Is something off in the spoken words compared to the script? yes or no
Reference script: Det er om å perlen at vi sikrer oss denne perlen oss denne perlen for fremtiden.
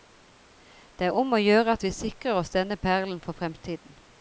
yes